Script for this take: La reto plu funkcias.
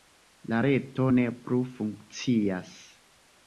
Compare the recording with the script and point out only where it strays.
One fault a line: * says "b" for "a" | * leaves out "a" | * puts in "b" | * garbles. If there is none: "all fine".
* puts in "ne"